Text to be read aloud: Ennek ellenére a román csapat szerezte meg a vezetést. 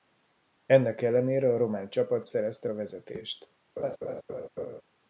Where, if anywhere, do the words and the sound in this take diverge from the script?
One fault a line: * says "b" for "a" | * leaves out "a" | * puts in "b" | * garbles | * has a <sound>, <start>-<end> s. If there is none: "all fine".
* leaves out "meg"
* has a laugh, 3.8-4.8 s